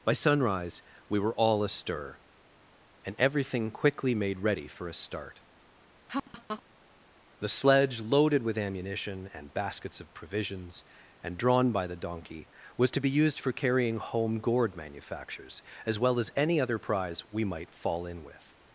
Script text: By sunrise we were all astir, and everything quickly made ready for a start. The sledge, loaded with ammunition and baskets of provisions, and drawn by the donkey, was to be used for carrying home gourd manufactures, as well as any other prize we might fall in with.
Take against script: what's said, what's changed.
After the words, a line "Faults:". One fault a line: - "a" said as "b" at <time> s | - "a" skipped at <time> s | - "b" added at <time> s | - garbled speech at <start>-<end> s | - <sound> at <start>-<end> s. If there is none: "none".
By sunrise we were all astir, and everything quickly made ready for a start. The sledge, loaded with ammunition and baskets of provisions, and drawn by the donkey, was to be used for carrying home gourd manufactures, as well as any other prize we might fall in with.
Faults:
- laugh at 6.1-6.6 s